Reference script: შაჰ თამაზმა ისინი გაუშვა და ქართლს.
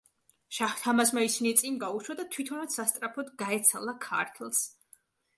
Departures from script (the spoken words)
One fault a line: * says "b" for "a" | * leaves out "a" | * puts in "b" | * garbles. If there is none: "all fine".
* puts in "წინ"
* puts in "თვითონაც სასწრაფოდ გაეცალა"